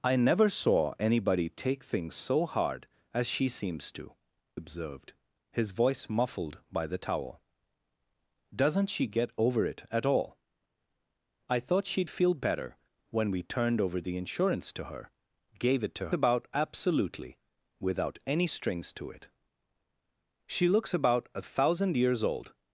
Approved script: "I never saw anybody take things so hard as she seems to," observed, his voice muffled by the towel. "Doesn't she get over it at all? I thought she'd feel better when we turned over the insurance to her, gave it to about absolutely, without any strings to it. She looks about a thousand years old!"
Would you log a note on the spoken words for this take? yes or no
no